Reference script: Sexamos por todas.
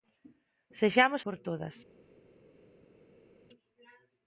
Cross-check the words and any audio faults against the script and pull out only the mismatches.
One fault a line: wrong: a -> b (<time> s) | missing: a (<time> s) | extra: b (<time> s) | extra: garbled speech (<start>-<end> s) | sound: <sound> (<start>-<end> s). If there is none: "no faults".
no faults